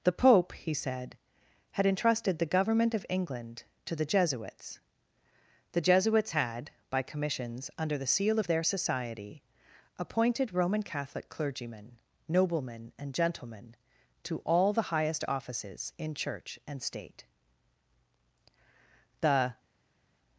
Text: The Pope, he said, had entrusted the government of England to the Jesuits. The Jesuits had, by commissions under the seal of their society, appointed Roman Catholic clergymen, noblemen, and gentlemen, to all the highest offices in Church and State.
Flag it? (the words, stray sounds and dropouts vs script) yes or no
yes